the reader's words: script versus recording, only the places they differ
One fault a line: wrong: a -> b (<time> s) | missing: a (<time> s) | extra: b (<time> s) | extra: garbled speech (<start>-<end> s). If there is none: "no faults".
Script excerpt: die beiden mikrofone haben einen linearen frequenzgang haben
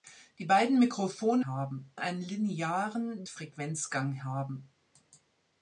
no faults